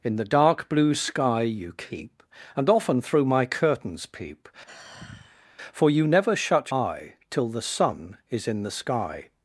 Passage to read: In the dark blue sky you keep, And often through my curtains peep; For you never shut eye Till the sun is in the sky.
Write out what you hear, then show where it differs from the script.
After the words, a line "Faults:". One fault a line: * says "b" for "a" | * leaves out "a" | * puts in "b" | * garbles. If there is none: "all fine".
In the dark blue sky you keep, And often through my curtains peep; For you never shut eye Till the sun is in the sky.
Faults:
all fine